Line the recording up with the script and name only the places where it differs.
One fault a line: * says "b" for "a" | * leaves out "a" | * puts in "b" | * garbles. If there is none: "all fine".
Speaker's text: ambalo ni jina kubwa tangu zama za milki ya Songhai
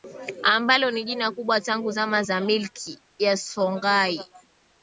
all fine